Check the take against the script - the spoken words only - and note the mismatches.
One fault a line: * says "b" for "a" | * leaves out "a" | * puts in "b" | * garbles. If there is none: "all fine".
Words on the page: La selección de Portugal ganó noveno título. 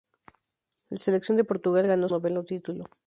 all fine